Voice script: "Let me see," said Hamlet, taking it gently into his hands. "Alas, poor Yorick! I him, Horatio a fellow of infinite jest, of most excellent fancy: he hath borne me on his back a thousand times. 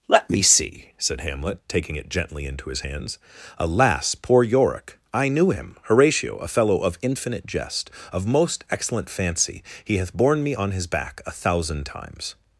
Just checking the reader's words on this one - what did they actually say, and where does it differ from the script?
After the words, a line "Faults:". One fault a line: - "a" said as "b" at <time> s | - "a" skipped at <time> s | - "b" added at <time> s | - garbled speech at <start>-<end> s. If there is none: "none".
"Let me see," said Hamlet, taking it gently into his hands. "Alas, poor Yorick! I knew him, Horatio a fellow of infinite jest, of most excellent fancy: he hath borne me on his back a thousand times.
Faults:
- "knew" added at 5.3 s